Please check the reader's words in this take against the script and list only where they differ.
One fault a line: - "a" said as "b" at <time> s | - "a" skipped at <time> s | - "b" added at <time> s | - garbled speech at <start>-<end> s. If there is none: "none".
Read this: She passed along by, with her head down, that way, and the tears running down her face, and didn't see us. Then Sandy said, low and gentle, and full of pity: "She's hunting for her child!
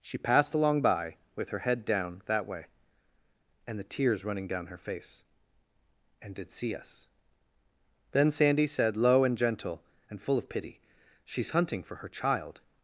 - "didn't" said as "did" at 6.3 s